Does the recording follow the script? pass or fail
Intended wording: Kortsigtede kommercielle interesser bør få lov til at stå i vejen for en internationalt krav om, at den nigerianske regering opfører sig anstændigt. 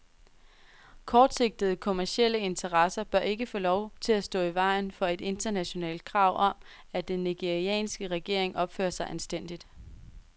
fail